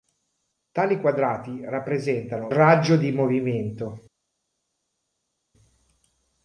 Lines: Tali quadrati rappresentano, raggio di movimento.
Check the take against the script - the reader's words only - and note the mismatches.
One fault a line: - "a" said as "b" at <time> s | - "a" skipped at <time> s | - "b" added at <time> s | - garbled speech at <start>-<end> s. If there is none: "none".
none